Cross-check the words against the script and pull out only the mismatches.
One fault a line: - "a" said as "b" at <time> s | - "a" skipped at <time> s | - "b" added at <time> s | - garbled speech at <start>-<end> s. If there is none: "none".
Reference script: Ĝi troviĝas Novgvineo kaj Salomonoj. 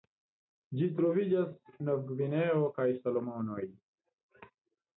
none